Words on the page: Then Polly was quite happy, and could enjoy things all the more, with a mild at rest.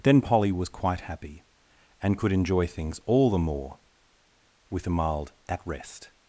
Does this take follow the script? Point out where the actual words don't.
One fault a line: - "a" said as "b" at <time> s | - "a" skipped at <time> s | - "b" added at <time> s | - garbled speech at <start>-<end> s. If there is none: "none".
none